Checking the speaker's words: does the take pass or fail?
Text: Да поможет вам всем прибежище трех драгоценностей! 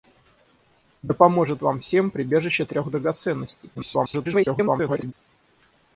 fail